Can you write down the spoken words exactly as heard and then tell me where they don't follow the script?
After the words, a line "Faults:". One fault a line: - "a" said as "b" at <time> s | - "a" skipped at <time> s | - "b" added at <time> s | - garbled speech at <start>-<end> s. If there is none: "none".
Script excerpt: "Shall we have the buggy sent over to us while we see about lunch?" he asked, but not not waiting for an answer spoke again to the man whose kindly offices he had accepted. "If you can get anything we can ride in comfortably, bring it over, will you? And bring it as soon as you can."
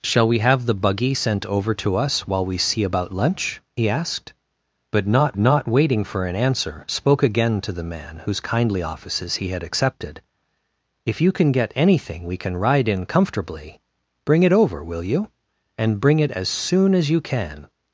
"Shall we have the buggy sent over to us while we see about lunch?" he asked, but not not waiting for an answer spoke again to the man whose kindly offices he had accepted. "If you can get anything we can ride in comfortably, bring it over, will you? And bring it as soon as you can."
Faults:
none